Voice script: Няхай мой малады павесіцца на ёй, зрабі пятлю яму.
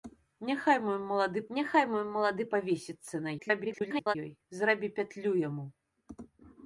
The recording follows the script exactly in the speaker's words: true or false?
false